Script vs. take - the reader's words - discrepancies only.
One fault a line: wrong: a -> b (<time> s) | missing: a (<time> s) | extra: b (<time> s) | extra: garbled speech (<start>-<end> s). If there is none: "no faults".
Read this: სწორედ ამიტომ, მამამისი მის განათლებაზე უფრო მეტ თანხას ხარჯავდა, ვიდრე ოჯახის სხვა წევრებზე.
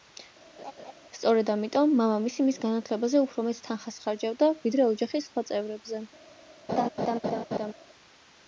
no faults